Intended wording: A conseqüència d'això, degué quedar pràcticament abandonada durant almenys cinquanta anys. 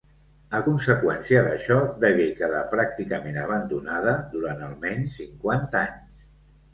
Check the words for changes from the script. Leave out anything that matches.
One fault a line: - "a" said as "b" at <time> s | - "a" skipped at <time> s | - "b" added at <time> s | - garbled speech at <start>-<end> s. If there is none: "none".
none